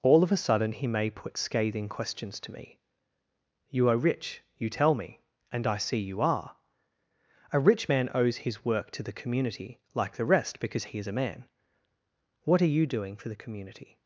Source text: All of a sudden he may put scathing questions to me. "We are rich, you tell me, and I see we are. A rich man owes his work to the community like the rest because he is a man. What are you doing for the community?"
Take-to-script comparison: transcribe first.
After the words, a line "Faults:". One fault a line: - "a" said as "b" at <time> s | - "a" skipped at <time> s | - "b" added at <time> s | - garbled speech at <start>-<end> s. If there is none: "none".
All of a sudden he may put scathing questions to me. "You are rich, you tell me, and I see you are. A rich man owes his work to the community like the rest because he is a man. What are you doing for the community?"
Faults:
- "We" said as "You" at 3.7 s
- "we" said as "you" at 6.0 s